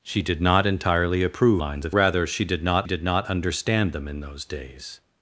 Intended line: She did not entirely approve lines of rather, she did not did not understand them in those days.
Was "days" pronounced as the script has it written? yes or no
yes